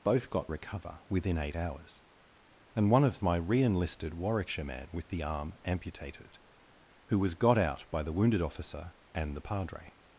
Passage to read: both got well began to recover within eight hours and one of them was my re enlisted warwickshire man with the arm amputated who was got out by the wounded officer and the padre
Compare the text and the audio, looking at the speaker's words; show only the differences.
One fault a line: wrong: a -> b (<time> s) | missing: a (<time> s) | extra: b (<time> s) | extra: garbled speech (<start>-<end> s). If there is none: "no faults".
missing: well began to (0.5 s)
missing: them was (3.2 s)